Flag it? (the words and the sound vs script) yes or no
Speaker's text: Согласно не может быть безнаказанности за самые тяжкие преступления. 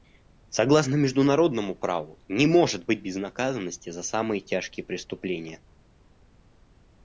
yes